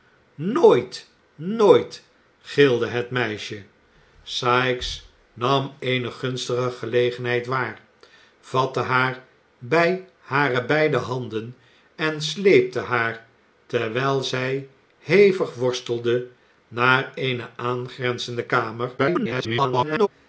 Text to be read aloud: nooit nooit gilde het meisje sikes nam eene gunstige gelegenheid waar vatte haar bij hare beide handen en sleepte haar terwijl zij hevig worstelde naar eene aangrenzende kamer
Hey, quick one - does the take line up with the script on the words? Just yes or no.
no